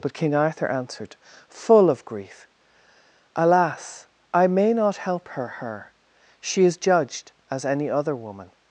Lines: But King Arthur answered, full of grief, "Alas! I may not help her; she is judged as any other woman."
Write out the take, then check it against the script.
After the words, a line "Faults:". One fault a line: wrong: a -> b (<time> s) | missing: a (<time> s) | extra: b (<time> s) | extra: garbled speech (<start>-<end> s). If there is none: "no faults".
But King Arthur answered, full of grief, "Alas! I may not help her her; she is judged as any other woman."
Faults:
extra: her (5.5 s)